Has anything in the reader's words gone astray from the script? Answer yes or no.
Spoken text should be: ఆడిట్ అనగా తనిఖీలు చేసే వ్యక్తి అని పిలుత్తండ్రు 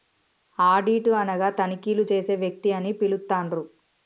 no